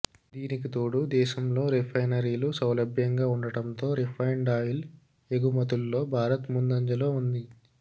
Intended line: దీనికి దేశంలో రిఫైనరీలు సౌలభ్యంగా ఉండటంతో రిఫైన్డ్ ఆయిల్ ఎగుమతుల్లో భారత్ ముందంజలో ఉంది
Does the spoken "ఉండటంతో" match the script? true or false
true